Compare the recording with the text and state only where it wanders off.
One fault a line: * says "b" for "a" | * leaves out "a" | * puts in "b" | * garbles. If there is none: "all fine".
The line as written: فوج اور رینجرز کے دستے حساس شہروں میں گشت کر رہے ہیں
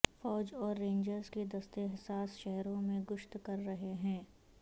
all fine